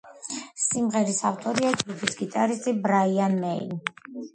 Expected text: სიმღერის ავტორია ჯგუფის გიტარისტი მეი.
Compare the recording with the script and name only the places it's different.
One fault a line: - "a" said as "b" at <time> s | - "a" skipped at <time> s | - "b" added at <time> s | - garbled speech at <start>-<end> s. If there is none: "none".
- "ბრაიან" added at 2.9 s